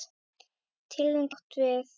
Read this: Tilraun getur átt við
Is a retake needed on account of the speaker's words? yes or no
yes